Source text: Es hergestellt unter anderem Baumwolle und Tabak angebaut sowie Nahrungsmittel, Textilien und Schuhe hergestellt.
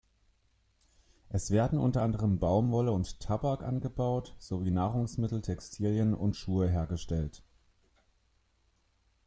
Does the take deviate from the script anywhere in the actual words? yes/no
yes